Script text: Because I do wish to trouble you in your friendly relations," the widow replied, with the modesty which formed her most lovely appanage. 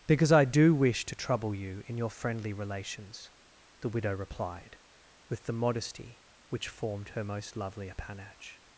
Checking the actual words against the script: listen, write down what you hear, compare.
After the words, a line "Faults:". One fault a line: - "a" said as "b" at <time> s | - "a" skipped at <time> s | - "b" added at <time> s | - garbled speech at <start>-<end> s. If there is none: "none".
Because I do wish to trouble you in your friendly relations," the widow replied, with the modesty which formed her most lovely appanage.
Faults:
none